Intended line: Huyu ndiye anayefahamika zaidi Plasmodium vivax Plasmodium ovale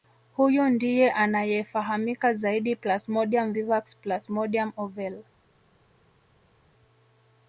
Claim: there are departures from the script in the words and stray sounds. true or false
false